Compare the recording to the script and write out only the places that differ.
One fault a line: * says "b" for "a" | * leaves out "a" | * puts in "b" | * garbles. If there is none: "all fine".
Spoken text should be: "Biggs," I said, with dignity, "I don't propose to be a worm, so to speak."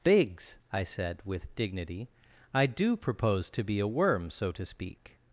* says "do" for "don't"